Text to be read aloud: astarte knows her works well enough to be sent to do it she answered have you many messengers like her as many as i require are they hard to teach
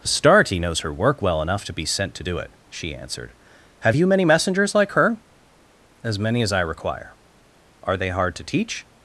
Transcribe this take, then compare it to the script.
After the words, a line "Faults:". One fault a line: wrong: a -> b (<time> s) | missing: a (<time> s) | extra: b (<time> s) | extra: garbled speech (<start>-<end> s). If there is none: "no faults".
astarte knows her work well enough to be sent to do it she answered have you many messengers like her as many as i require are they hard to teach
Faults:
wrong: works -> work (0.9 s)